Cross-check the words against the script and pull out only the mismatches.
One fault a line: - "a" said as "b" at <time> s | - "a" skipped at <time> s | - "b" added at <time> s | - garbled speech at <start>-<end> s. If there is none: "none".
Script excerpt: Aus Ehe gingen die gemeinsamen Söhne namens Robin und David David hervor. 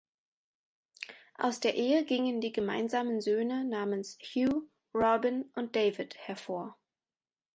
- "der" added at 1.6 s
- "Hugh" added at 4.2 s
- "David" skipped at 6.2 s